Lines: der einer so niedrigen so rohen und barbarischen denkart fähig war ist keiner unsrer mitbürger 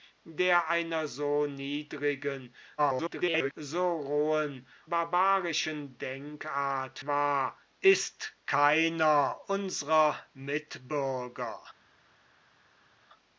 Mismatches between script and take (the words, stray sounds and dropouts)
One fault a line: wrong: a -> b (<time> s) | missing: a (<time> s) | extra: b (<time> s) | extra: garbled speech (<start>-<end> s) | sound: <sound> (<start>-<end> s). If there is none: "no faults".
extra: garbled speech (2.8-3.5 s)
missing: und (4.7 s)
missing: fähig (7.0 s)